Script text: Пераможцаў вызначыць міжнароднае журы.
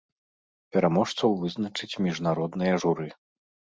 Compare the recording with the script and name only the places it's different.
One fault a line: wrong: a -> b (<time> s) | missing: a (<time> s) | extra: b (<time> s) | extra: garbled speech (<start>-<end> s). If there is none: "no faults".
no faults